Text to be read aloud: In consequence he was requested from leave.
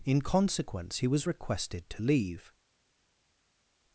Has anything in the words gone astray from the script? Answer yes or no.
yes